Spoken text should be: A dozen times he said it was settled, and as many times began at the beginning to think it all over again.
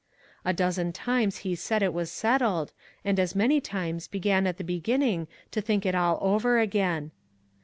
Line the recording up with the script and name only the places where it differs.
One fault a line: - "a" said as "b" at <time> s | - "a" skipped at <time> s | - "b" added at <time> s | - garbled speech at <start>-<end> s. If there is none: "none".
none